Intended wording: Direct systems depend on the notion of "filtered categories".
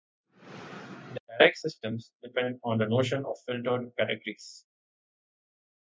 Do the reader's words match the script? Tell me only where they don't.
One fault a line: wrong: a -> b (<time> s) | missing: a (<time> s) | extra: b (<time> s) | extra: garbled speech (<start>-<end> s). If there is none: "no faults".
no faults